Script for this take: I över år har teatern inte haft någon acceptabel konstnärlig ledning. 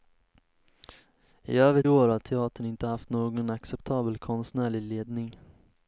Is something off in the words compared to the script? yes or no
no